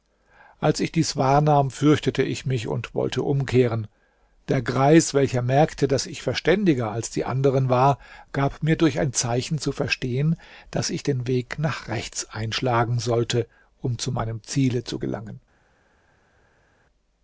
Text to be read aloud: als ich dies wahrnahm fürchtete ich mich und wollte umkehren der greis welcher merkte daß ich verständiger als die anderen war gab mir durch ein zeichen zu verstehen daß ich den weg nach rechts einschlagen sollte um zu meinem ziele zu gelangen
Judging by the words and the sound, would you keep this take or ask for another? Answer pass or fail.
pass